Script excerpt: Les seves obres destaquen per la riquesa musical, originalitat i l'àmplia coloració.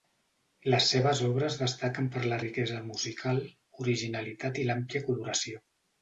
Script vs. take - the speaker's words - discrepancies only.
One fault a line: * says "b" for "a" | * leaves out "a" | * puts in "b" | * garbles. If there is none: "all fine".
all fine